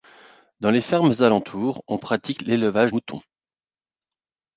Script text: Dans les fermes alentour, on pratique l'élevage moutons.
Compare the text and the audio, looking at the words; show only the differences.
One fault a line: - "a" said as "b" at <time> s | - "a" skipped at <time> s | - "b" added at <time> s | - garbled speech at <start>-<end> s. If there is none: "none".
none